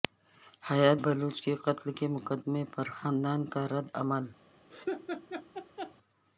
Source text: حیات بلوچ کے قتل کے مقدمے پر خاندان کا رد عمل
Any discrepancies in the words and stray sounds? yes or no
yes